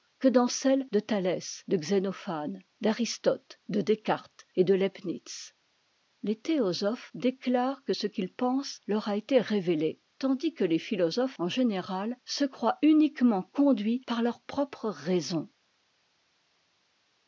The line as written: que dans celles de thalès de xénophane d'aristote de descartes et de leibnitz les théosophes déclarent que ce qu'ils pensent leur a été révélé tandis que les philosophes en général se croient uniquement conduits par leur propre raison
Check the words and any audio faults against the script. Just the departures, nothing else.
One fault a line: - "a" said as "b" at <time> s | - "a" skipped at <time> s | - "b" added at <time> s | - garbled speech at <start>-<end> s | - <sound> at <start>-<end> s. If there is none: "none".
none